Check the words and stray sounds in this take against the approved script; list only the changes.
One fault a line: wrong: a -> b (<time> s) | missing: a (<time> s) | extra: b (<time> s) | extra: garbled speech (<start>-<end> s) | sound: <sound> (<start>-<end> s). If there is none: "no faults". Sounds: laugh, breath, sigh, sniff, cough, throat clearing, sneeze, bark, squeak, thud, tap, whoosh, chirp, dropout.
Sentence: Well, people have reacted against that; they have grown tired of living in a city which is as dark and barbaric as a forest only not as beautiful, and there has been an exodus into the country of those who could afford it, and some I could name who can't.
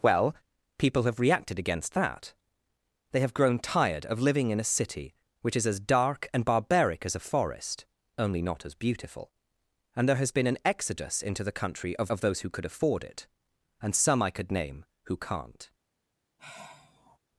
extra: of (12.1 s)
sound: sigh (16.4-17.2 s)